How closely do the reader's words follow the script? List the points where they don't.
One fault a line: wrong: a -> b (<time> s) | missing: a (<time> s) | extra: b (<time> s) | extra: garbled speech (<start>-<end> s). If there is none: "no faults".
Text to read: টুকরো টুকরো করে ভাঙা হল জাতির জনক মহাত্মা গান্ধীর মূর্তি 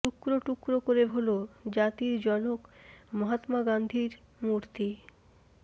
missing: ভাঙা (1.0 s)